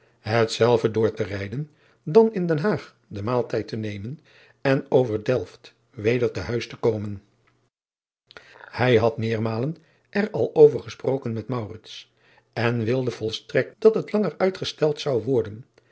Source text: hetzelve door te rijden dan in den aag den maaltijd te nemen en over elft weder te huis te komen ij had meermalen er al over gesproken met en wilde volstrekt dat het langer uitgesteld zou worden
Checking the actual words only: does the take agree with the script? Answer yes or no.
yes